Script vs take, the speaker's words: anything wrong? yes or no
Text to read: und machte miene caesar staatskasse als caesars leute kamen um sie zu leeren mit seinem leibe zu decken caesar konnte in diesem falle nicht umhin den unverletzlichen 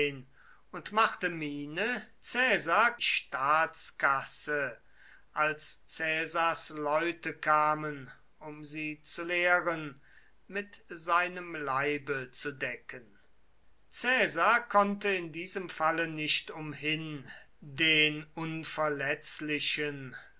no